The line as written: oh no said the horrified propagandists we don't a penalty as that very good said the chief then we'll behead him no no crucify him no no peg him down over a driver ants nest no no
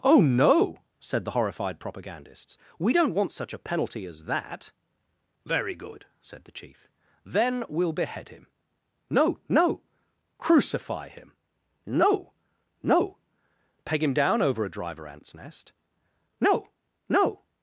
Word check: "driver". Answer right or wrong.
right